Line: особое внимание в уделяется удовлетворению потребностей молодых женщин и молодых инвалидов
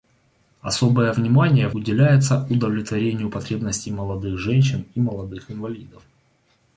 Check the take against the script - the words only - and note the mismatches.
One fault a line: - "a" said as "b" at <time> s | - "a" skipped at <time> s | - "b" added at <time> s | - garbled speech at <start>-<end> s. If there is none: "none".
none